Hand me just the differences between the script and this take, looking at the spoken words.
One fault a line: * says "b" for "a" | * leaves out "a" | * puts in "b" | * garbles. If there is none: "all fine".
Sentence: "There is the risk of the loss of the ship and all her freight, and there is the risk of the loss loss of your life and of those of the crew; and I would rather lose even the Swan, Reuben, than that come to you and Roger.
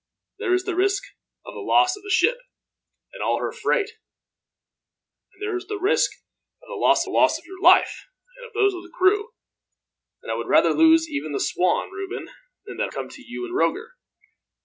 all fine